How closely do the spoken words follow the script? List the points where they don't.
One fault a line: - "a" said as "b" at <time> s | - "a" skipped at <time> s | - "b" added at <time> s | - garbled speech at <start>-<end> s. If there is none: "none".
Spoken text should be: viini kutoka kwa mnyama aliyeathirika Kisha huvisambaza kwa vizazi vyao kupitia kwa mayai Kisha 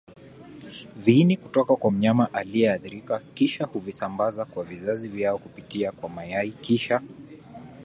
none